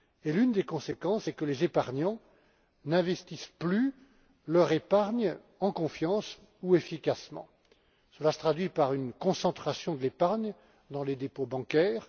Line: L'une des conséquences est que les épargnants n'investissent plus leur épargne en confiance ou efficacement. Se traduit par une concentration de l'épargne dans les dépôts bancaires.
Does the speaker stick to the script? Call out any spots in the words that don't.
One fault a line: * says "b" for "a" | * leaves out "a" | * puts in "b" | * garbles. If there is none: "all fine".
* puts in "Cela"